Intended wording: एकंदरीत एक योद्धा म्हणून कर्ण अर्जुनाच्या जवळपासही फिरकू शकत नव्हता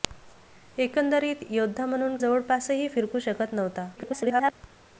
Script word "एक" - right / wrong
wrong